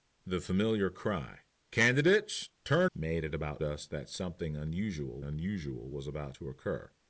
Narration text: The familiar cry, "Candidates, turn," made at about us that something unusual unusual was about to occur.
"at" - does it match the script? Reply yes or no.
yes